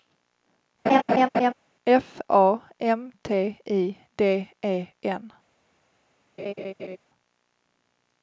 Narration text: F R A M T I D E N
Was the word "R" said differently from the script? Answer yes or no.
yes